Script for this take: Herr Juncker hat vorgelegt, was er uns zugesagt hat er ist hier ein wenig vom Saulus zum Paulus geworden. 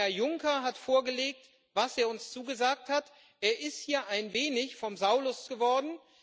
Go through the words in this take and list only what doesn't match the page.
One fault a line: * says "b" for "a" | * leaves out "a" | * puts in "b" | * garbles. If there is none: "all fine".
* leaves out "zum Paulus"